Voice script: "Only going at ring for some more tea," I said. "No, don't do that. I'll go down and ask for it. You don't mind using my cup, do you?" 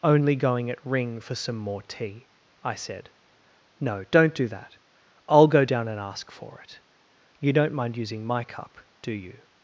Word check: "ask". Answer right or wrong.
right